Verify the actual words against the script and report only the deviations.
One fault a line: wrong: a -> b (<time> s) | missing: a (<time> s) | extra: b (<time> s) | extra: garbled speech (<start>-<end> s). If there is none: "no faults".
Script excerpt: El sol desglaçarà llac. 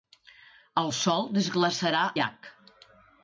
no faults